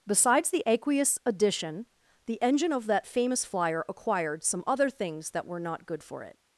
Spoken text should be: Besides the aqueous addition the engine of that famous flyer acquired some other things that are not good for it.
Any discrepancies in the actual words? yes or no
yes